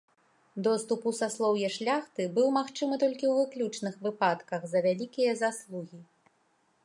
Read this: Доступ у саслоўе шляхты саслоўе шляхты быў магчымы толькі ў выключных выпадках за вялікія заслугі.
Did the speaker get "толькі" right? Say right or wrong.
right